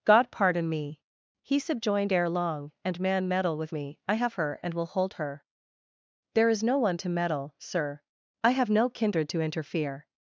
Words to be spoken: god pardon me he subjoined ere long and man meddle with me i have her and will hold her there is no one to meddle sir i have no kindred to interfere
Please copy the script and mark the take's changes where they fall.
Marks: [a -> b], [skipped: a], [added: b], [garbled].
god pardon me he subjoined ere long and man meddle with me i have her and will hold her there is no one to meddle sir i have no kindred to interfere